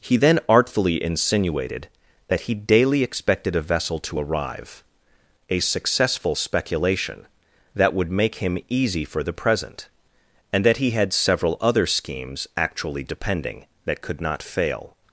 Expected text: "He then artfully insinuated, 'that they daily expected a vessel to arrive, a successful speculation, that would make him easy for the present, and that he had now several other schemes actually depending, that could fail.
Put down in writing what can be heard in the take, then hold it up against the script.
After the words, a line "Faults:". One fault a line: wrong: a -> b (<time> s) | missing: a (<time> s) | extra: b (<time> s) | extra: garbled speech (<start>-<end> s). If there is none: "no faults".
"He then artfully insinuated, 'that he daily expected a vessel to arrive, a successful speculation, that would make him easy for the present, and that he had several other schemes actually depending, that could not fail.
Faults:
wrong: they -> he (2.4 s)
missing: now (11.1 s)
extra: not (14.2 s)